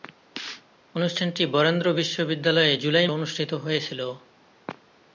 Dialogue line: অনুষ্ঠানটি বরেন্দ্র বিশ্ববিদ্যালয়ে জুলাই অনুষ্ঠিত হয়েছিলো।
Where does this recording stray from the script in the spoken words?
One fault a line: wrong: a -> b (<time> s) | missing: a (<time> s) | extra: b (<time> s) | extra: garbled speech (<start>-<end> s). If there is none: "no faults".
no faults